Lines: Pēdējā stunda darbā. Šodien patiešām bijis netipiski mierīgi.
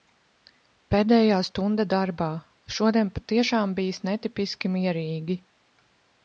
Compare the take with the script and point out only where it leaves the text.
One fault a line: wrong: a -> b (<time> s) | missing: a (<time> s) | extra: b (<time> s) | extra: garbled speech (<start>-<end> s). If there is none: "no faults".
no faults